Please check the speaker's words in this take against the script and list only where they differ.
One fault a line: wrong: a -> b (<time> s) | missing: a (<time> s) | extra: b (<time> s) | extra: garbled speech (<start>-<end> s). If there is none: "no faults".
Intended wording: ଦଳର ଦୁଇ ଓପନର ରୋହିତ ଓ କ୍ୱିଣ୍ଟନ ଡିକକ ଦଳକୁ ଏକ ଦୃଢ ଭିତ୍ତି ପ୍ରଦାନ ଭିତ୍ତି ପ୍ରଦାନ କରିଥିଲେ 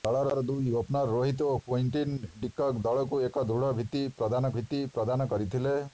no faults